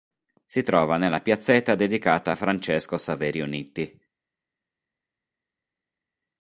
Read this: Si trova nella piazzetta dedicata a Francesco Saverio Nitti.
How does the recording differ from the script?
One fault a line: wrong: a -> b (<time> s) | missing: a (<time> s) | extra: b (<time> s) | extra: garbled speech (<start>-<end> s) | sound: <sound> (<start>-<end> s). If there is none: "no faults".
no faults